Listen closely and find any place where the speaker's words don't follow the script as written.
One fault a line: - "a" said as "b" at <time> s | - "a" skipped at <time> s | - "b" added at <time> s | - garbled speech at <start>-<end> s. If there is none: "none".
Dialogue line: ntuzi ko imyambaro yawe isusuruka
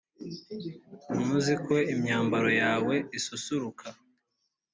none